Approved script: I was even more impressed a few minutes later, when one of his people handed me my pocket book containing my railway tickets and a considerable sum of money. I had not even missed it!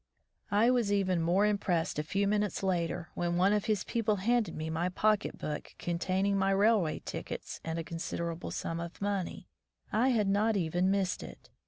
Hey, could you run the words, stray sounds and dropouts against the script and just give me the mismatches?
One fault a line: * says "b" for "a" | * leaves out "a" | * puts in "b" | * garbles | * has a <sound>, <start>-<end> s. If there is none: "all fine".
all fine